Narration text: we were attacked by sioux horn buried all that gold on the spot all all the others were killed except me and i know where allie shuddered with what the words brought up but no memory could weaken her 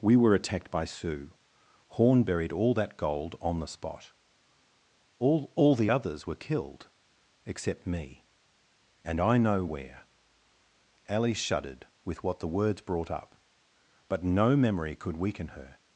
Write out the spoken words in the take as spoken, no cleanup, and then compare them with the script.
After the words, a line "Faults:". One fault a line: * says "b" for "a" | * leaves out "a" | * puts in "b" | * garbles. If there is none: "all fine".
we were attacked by sioux horn buried all that gold on the spot all all the others were killed except me and i know where allie shuddered with what the words brought up but no memory could weaken her
Faults:
all fine